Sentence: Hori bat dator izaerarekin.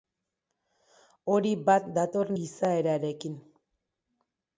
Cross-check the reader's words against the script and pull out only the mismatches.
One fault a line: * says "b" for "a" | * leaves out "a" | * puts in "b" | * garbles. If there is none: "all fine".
all fine